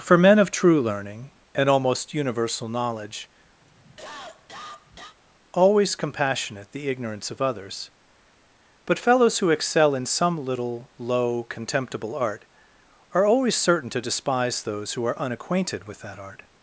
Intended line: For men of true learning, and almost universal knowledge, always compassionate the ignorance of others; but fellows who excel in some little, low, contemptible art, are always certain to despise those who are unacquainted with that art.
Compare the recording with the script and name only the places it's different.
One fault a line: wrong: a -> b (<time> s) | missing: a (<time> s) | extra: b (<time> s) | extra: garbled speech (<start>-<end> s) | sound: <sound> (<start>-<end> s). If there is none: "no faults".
sound: cough (3.6-5.2 s)